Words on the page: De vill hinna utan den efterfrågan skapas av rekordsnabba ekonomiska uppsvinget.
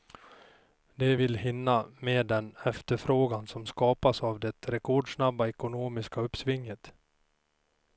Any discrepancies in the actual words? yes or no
yes